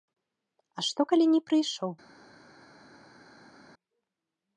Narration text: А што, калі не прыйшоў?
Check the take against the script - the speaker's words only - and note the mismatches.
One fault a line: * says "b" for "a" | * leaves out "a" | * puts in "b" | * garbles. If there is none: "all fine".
all fine